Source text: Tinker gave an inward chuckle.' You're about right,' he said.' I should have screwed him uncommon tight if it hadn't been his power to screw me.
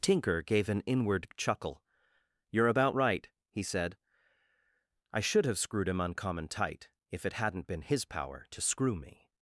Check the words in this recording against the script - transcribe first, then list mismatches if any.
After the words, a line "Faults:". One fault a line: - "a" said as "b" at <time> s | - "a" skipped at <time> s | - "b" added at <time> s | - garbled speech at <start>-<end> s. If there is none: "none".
Tinker gave an inward chuckle.' You're about right,' he said.' I should have screwed him uncommon tight if it hadn't been his power to screw me.
Faults:
none